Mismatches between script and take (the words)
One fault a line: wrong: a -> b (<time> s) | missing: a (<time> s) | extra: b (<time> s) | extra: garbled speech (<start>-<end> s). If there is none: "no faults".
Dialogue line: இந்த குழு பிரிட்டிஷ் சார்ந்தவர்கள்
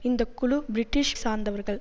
no faults